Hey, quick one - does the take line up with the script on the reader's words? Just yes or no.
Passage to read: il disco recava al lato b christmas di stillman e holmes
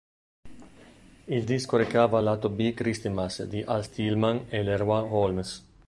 no